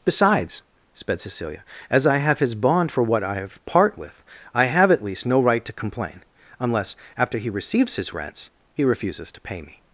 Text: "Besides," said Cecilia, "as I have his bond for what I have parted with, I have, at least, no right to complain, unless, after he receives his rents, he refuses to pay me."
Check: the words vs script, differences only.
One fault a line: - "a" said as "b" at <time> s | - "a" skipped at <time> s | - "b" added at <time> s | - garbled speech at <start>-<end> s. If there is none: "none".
- "said" said as "sped" at 0.9 s
- "parted" said as "part" at 3.7 s